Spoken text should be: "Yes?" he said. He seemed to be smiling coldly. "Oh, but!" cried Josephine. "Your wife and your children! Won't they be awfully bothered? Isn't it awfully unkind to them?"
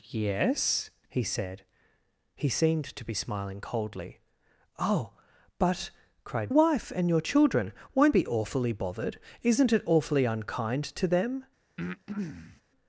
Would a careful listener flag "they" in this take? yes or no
yes